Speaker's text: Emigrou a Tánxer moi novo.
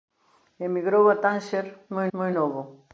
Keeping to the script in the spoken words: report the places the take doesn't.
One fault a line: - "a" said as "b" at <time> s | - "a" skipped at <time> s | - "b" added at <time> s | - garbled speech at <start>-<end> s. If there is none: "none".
- "moi" added at 2.1 s